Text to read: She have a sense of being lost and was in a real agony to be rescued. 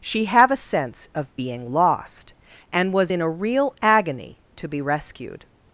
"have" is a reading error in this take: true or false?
false